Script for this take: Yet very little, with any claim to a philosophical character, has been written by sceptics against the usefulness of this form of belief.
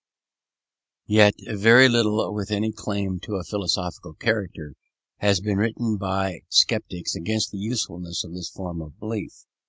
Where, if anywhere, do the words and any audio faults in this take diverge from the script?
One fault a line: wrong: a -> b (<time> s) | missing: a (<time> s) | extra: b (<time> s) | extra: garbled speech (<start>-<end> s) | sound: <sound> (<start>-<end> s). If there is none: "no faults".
no faults